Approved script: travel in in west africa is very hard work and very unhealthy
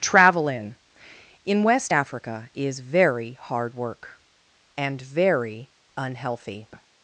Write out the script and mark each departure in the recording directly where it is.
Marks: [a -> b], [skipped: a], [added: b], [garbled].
travel in in west africa is very hard work and very unhealthy